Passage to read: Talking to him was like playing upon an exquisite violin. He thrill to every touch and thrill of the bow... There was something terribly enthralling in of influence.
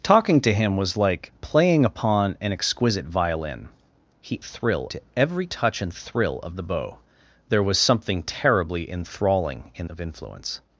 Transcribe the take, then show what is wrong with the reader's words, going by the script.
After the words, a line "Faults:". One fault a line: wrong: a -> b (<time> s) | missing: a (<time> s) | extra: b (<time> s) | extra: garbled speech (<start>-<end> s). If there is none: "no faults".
Talking to him was like playing upon an exquisite violin. He thrill to every touch and thrill of the bow... There was something terribly enthralling in of influence.
Faults:
no faults